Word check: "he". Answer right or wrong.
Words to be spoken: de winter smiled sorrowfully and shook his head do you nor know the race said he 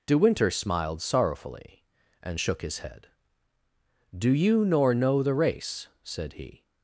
right